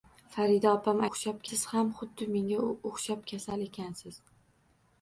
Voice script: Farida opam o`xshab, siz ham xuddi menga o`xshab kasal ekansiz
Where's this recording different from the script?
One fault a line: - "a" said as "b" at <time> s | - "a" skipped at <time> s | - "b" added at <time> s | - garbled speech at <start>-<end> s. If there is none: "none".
none